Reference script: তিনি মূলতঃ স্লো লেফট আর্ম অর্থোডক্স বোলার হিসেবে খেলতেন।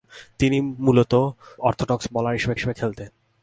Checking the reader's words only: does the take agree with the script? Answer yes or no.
no